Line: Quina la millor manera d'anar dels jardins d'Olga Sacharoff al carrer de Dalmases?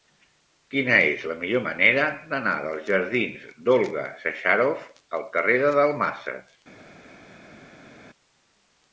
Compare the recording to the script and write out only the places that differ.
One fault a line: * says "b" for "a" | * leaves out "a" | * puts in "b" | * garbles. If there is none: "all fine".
* puts in "és"